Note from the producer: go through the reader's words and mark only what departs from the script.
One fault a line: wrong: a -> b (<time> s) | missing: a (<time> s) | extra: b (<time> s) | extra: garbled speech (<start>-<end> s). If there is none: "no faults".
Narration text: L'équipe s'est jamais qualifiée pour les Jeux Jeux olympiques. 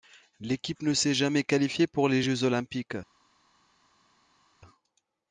extra: ne (0.8 s)
missing: Jeux (2.4 s)